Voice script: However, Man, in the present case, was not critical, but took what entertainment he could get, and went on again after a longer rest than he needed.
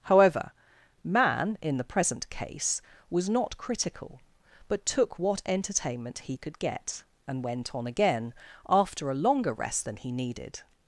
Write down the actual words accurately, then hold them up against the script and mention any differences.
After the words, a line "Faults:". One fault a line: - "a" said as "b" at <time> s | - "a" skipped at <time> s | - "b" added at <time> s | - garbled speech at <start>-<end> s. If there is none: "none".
However, Man, in the present case, was not critical, but took what entertainment he could get, and went on again after a longer rest than he needed.
Faults:
none